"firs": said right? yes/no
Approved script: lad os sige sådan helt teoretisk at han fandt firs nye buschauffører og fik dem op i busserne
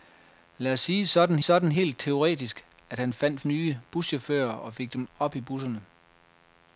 no